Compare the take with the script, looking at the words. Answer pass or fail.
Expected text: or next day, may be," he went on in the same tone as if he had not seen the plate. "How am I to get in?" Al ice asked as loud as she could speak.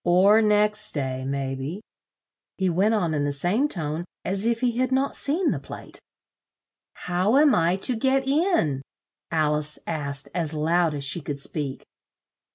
pass